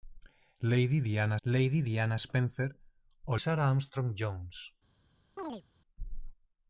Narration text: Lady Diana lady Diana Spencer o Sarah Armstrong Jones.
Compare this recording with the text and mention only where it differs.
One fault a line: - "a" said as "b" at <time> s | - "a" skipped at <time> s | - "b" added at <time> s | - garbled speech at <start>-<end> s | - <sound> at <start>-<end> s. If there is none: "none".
- chirp at 5.4-5.6 s